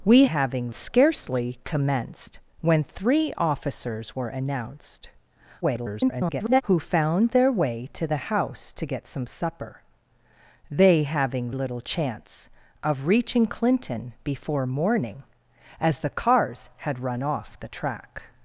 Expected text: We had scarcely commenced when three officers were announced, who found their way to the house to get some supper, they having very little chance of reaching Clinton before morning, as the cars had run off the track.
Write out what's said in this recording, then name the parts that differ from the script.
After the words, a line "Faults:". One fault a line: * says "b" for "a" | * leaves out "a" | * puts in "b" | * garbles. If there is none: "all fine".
We having scarcely commenced when three officers were announced, [garbled] who found their way to the house to get some supper, they having little chance of reaching Clinton before morning, as the cars had run off the track.
Faults:
* says "having" for "had"
* garbles
* leaves out "very"